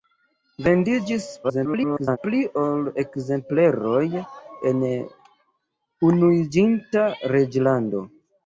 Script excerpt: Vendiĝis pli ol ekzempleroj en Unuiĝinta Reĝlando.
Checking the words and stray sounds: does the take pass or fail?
fail